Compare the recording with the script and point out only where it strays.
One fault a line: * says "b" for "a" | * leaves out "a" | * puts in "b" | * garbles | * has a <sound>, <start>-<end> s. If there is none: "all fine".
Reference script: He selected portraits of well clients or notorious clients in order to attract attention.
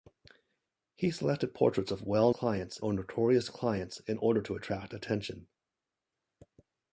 all fine